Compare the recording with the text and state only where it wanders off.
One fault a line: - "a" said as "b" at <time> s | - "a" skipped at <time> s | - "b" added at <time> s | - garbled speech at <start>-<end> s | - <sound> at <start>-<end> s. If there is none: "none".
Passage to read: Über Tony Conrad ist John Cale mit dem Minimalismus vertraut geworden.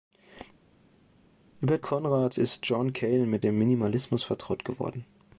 - "Tony" skipped at 1.8 s